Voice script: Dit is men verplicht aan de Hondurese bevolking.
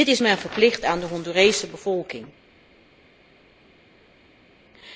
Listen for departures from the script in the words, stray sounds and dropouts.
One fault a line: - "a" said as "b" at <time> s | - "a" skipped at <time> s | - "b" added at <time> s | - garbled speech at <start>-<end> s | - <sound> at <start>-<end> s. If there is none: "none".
none